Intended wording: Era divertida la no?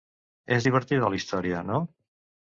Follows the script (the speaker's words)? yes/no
no